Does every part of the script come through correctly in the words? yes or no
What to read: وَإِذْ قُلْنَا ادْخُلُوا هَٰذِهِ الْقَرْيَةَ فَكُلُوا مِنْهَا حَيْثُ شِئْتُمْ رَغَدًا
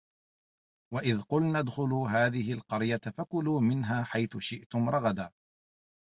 yes